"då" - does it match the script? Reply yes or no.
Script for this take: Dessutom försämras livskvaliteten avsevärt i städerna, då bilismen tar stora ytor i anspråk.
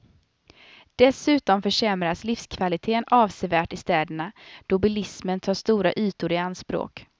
yes